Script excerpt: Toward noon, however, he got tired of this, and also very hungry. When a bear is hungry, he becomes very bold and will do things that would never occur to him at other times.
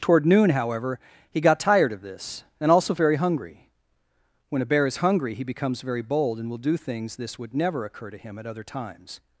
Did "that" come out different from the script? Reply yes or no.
yes